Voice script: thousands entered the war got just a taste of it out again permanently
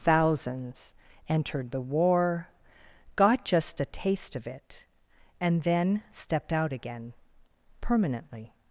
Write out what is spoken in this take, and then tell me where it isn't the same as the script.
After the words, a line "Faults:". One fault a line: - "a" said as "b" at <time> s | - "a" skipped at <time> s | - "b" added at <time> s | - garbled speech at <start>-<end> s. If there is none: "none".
thousands entered the war got just a taste of it and then stepped out again permanently
Faults:
- "and then stepped" added at 5.4 s